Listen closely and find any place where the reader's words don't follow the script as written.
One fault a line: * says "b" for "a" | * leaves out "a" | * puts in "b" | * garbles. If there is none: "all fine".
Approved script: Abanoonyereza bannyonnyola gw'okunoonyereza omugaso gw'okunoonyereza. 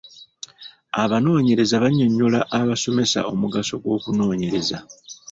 * says "abasomesa" for "gw'okunoonyereza"